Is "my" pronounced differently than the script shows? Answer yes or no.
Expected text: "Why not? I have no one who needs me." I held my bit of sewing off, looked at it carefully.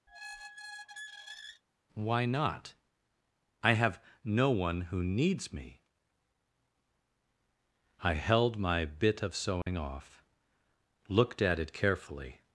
no